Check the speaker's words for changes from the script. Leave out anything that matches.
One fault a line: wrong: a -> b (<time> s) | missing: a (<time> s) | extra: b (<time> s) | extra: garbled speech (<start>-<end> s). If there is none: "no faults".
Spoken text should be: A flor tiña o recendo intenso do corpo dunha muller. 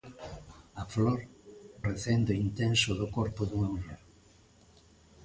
missing: tiña (1.2 s)